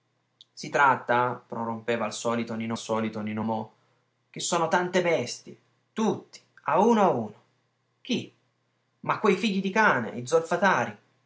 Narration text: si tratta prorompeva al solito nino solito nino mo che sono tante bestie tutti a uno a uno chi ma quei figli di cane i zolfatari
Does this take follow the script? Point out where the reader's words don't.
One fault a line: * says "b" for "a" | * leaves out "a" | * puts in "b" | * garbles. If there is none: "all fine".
all fine